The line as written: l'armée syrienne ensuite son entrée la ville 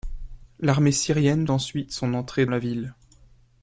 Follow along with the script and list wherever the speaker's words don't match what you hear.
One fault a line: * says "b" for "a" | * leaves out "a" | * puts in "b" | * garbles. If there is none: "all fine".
all fine